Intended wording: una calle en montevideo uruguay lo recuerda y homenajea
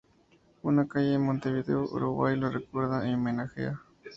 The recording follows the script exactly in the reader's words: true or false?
true